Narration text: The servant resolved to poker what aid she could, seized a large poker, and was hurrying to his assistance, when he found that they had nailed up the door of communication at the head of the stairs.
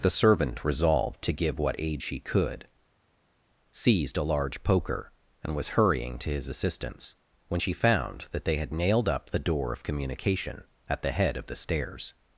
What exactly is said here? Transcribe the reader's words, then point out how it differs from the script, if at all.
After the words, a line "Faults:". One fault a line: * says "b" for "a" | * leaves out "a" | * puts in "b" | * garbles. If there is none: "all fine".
The servant resolved to give what aid she could, seized a large poker, and was hurrying to his assistance, when she found that they had nailed up the door of communication at the head of the stairs.
Faults:
* says "give" for "poker"
* says "she" for "he"